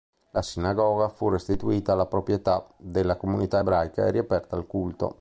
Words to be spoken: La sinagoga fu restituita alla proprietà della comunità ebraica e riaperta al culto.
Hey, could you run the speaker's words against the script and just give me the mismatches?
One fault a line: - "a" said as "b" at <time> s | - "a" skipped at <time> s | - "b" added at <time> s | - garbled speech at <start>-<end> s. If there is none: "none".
none